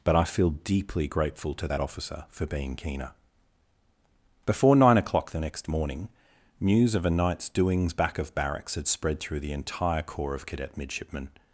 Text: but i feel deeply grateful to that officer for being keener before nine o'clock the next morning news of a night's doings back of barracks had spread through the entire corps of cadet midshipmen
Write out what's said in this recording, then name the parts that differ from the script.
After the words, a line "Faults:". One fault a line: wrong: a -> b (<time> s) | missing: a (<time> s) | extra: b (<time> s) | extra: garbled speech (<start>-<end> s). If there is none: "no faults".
but i feel deeply grateful to that officer for being keener before nine o'clock the next morning news of a night's doings back of barracks had spread through the entire corps of cadet midshipmen
Faults:
no faults